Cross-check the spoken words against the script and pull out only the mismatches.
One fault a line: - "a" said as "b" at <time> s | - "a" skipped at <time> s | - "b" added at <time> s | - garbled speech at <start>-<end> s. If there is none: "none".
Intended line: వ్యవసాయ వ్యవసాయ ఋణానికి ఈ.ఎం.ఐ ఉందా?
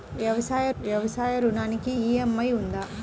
none